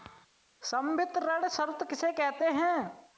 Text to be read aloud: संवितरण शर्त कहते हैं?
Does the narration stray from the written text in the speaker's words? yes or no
yes